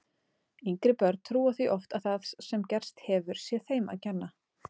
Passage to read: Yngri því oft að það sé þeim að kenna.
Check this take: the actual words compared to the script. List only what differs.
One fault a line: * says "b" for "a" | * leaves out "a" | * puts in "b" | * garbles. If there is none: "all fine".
* puts in "börn trúa"
* puts in "sem gerst hefur"